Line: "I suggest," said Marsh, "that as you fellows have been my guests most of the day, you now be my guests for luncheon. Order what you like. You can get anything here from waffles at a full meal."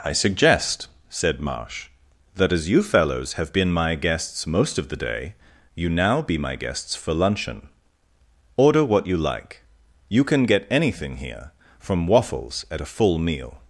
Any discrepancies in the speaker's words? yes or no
no